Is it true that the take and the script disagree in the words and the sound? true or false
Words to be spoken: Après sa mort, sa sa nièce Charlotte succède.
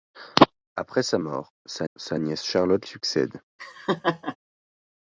true